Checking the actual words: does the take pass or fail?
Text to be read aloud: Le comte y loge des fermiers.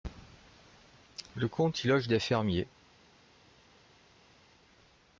pass